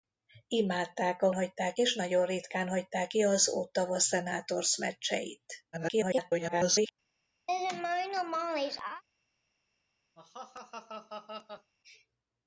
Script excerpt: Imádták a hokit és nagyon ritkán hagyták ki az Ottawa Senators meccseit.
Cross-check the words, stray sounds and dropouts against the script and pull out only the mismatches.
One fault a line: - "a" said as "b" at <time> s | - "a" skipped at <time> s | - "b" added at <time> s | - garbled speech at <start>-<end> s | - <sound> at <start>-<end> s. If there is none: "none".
- "hokit" said as "hagyták" at 1.3 s
- garbled speech at 5.7-6.9 s
- laugh at 7.5-9.0 s
- laugh at 10.2-11.7 s